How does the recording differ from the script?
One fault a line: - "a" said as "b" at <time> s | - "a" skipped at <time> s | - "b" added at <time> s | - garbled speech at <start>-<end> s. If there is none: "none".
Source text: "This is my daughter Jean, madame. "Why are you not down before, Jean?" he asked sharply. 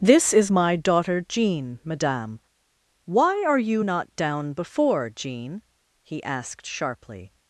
none